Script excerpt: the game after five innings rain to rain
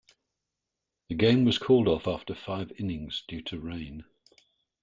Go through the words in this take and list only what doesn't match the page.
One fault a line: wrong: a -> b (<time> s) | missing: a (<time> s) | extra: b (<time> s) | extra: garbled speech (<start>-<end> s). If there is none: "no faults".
extra: was called off (1.4 s)
wrong: rain -> due (3.3 s)